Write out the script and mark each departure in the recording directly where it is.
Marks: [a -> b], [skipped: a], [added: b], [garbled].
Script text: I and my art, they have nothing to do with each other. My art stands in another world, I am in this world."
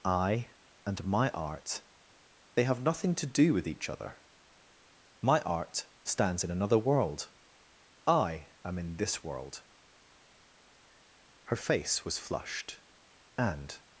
I and my art, they have nothing to do with each other. My art stands in another world, I am in this world." [added: Her face was flushed and]